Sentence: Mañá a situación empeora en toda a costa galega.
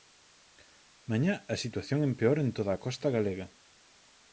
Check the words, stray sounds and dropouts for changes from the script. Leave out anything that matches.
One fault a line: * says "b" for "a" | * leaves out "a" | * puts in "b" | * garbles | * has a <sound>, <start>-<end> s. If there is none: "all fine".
all fine